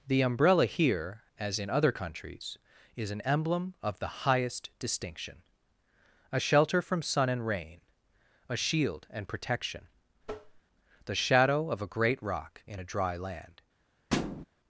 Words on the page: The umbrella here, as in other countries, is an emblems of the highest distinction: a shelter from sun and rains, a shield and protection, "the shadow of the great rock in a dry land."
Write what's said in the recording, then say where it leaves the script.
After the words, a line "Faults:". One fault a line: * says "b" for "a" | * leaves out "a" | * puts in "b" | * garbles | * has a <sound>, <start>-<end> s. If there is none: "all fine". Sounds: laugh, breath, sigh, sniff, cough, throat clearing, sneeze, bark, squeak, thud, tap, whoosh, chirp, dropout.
The umbrella here, as in other countries, is an emblem of the highest distinction: a shelter from sun and rain, a shield and protection, "the shadow of a great rock in a dry land."
Faults:
* says "emblem" for "emblems"
* says "rain" for "rains"
* has a tap, 10.2-10.6 s
* says "a" for "the"
* has a thud, 14.1-14.5 s